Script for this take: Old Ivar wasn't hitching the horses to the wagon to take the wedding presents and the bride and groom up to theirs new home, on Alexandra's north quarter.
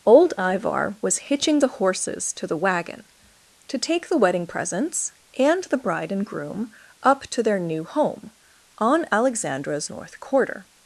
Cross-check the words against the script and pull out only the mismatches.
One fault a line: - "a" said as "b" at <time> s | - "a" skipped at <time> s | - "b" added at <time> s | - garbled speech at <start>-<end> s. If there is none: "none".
- "wasn't" said as "was" at 1.0 s
- "theirs" said as "their" at 7.4 s